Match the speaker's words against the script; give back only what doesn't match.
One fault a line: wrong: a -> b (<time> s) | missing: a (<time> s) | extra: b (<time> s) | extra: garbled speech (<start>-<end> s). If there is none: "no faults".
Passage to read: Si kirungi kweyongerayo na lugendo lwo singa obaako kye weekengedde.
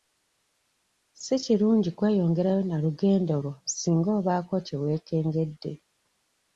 no faults